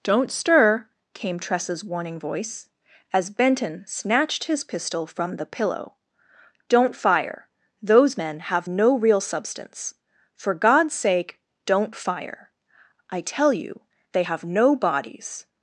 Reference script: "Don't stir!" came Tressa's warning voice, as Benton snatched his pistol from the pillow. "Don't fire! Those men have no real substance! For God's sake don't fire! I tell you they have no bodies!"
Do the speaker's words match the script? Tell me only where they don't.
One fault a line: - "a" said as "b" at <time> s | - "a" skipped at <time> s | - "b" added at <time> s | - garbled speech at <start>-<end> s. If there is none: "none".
none